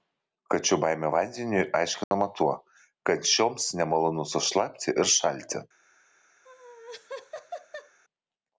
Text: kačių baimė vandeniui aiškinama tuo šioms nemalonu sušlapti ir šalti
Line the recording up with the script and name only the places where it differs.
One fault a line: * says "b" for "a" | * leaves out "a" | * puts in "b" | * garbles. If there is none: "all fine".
* puts in "kad"